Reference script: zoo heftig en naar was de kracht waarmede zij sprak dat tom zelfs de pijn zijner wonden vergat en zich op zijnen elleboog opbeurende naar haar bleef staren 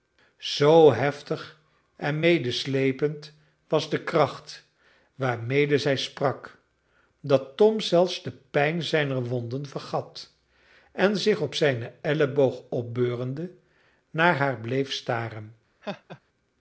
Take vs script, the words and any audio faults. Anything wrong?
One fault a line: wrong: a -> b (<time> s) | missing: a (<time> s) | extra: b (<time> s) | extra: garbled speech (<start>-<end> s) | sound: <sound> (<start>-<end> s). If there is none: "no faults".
wrong: naar -> medesleepend (2.2 s)
sound: laugh (15.8-16.2 s)